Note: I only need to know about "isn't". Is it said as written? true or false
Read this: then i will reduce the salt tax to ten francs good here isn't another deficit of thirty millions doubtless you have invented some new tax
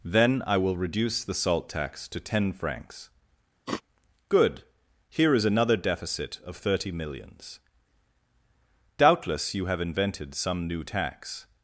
false